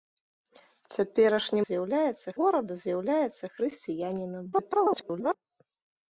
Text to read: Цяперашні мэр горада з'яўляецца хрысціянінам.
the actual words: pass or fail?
fail